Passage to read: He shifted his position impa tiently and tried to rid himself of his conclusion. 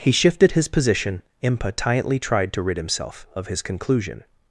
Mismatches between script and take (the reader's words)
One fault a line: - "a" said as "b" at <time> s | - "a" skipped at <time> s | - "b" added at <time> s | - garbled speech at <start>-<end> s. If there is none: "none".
- "and" skipped at 2.2 s